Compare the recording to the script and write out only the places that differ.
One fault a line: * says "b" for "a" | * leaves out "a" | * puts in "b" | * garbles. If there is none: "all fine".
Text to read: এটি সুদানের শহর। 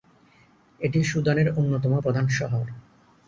* puts in "অন্যতম প্রধান"